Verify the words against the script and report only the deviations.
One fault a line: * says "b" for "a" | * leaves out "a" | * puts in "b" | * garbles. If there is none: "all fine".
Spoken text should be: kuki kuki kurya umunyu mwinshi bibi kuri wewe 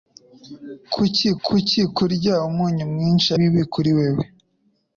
all fine